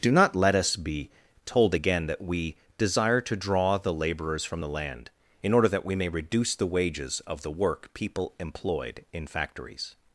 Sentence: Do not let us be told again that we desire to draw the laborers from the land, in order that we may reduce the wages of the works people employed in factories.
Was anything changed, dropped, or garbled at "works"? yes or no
yes